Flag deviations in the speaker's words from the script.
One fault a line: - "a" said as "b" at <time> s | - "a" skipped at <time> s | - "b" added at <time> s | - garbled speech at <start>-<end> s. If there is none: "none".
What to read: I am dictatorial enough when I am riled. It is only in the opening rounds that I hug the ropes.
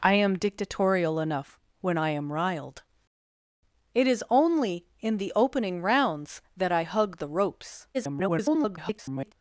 - garbled speech at 7.9-9.3 s